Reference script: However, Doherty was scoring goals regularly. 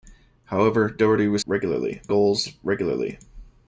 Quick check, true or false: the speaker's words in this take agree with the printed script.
false